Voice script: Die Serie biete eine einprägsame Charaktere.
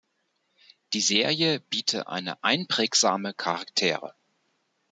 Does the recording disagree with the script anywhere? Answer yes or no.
no